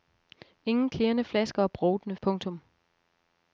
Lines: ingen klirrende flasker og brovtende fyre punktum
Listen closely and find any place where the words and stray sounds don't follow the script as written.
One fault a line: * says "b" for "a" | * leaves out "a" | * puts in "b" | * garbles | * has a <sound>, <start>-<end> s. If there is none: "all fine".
* leaves out "fyre"